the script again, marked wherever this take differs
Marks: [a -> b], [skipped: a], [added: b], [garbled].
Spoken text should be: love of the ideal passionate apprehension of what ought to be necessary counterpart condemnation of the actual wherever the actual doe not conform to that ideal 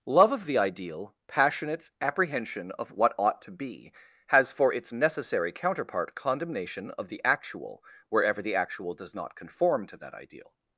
love of the ideal passionate apprehension of what ought to be [added: has for its] necessary counterpart condemnation of the actual wherever the actual [doe -> does] not conform to that ideal